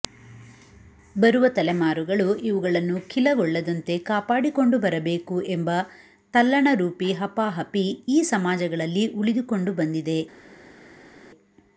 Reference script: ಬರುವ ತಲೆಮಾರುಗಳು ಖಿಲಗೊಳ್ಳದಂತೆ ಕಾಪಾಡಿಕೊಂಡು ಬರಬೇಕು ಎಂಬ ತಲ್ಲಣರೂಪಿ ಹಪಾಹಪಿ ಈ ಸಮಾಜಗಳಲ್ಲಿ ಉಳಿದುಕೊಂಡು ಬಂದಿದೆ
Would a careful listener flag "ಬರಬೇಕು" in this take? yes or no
no